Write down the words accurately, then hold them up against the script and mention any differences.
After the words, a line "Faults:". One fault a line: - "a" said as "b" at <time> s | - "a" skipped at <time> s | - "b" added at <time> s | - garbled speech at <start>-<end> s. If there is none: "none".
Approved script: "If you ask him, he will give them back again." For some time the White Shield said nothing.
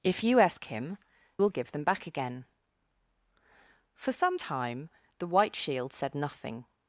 "If you ask him, will give them back again." For some time the White Shield said nothing.
Faults:
- "he" skipped at 1.0 s